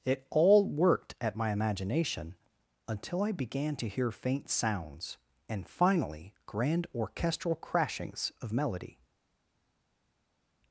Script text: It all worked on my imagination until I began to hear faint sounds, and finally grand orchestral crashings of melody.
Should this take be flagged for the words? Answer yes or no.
yes